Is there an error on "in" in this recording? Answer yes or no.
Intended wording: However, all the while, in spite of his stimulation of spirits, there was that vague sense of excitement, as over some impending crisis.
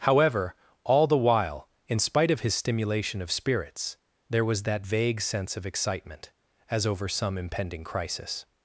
no